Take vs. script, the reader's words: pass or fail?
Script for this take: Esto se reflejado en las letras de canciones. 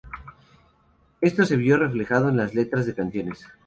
fail